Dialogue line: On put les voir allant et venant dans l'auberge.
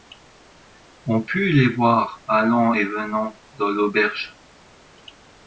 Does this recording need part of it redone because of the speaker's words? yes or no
no